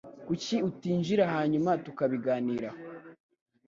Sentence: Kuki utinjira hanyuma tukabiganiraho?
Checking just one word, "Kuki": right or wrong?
right